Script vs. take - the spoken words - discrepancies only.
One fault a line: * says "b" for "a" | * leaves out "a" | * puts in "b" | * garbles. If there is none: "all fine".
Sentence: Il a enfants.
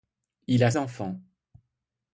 all fine